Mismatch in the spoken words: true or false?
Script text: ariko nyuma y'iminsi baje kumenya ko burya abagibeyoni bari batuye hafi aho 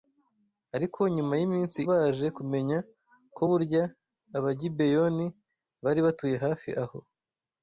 false